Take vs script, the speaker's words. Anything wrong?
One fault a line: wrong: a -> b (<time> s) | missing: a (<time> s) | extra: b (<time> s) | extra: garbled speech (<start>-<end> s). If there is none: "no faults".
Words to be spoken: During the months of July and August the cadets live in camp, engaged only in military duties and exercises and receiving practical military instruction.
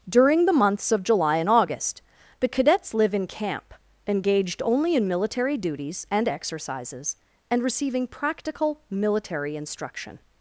no faults